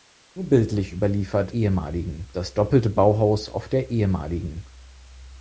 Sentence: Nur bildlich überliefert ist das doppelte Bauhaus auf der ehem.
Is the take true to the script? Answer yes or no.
no